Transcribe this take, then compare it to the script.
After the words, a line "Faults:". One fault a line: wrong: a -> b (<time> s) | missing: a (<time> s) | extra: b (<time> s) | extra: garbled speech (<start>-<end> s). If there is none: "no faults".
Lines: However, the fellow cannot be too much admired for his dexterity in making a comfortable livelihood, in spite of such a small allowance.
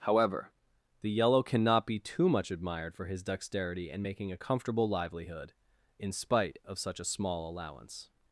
However, the yellow cannot be too much admired for his dexterity in making a comfortable livelihood, in spite of such a small allowance.
Faults:
wrong: fellow -> yellow (1.1 s)